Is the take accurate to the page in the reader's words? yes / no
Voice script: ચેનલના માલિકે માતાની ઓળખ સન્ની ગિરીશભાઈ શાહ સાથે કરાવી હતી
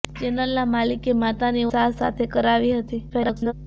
no